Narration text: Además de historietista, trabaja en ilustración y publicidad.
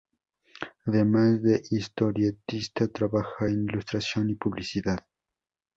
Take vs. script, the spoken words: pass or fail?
pass